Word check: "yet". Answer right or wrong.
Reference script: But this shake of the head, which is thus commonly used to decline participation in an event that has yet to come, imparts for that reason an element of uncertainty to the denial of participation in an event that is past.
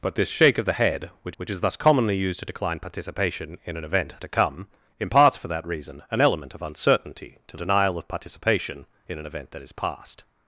wrong